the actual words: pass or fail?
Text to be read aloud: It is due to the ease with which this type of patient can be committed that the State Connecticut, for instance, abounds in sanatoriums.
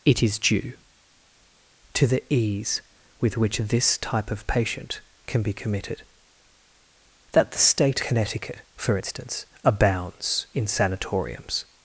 pass